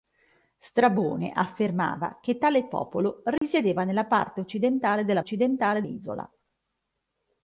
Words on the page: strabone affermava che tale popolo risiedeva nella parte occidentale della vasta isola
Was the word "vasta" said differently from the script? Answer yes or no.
yes